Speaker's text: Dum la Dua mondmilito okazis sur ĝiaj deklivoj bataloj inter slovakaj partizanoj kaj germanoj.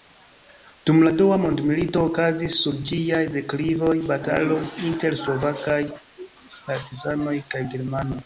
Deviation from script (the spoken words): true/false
false